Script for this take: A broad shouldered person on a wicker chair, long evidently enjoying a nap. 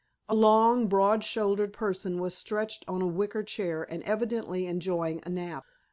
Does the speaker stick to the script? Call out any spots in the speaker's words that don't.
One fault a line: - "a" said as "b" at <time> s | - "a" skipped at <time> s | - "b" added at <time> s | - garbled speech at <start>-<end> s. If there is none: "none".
- "long" added at 0.3 s
- "was stretched" added at 2.2 s
- "long" said as "and" at 3.9 s